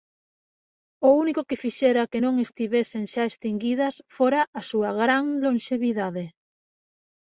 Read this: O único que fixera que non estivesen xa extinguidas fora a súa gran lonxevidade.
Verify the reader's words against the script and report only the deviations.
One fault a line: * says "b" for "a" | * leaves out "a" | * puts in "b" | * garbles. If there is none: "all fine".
all fine